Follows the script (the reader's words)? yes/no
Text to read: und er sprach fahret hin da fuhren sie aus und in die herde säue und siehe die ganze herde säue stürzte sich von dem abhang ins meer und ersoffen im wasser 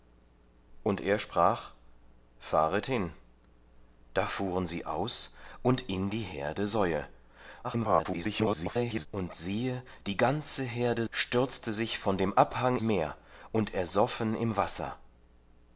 no